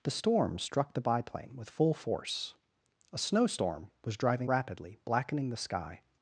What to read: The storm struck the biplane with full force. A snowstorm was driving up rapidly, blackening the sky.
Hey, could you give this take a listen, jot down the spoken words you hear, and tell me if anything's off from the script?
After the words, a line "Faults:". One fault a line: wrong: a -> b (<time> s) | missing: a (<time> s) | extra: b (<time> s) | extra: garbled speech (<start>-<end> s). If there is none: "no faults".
The storm struck the biplane with full force. A snowstorm was driving rapidly, blackening the sky.
Faults:
missing: up (4.5 s)